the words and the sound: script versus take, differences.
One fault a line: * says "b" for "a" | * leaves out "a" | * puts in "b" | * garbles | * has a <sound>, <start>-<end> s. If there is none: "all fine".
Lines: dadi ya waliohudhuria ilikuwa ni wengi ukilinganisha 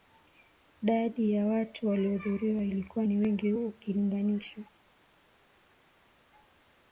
* puts in "watu"